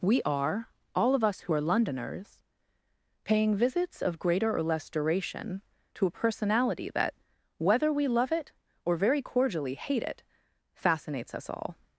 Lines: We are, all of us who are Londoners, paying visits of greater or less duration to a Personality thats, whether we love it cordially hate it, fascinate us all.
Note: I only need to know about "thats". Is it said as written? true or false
false